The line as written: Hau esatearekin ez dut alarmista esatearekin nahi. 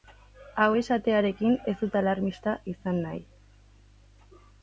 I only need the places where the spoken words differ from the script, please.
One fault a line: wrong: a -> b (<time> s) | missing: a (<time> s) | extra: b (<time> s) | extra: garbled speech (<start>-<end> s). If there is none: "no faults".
wrong: esatearekin -> izan (2.7 s)